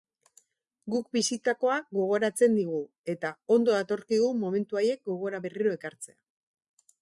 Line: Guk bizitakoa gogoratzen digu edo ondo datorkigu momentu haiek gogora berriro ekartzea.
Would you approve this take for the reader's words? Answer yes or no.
no